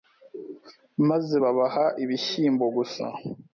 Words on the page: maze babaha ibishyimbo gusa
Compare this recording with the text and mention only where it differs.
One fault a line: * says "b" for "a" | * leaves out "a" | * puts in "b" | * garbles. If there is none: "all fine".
all fine